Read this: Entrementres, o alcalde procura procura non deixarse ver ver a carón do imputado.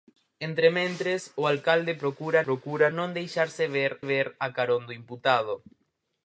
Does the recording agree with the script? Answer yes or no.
yes